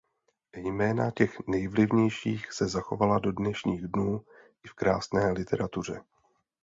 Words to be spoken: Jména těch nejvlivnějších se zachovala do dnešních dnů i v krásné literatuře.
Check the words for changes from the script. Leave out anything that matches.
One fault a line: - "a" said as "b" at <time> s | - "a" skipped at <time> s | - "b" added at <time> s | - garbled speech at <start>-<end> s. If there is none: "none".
none